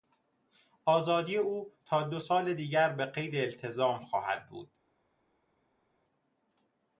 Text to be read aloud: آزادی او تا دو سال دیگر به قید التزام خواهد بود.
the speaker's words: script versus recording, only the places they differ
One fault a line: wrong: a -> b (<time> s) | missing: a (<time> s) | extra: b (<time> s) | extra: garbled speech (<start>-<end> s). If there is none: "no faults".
no faults